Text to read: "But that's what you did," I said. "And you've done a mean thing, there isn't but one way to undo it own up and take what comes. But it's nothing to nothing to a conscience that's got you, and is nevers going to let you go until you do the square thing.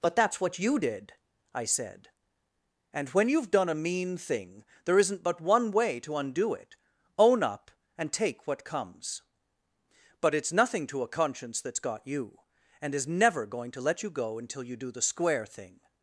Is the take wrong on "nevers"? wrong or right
wrong